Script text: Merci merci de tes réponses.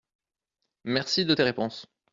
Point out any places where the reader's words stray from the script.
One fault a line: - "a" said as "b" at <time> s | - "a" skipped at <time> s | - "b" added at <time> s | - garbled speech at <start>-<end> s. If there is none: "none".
- "merci" skipped at 1.2 s